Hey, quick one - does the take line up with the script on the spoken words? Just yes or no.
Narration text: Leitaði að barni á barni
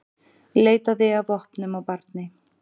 no